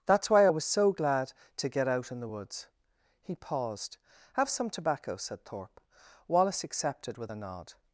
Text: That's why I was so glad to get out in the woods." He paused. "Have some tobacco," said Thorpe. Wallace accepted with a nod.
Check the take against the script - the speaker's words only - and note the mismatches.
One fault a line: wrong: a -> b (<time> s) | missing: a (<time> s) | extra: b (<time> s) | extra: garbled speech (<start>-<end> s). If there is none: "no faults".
no faults